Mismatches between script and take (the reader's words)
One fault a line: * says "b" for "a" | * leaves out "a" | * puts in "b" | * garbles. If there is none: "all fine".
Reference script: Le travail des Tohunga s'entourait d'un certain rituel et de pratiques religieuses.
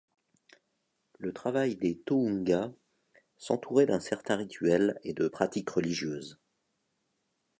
all fine